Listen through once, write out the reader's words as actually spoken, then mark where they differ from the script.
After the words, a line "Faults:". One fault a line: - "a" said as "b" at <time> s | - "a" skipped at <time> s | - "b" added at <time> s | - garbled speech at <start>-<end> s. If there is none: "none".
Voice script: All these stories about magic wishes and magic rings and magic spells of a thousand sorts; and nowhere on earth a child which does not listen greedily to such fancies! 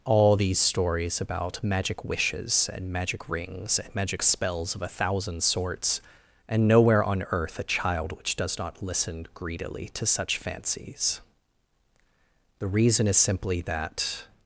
All these stories about magic wishes and magic rings and magic spells of a thousand sorts; and nowhere on earth a child which does not listen greedily to such fancies! The reason is simply that
Faults:
- "The reason is simply that" added at 12.6 s